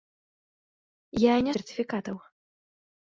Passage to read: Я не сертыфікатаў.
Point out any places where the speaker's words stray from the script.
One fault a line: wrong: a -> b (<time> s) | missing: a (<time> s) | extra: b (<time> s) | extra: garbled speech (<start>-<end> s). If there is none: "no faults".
no faults